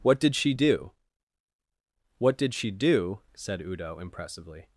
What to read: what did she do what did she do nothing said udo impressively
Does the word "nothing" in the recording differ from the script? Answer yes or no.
yes